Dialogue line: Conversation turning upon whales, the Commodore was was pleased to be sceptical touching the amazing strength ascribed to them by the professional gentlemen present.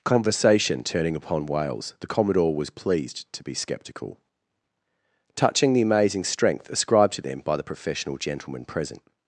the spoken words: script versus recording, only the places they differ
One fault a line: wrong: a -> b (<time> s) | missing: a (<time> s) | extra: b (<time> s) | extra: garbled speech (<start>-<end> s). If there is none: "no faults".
missing: was (2.7 s)